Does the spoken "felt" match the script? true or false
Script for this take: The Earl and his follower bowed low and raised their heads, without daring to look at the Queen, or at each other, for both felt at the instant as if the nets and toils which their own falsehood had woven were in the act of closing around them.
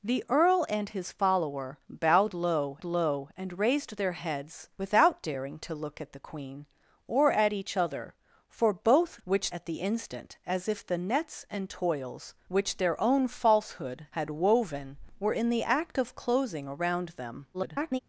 false